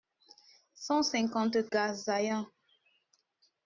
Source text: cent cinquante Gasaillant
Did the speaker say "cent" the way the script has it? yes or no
yes